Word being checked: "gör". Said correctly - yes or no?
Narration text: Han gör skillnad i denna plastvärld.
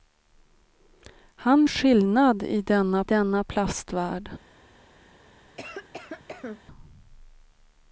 no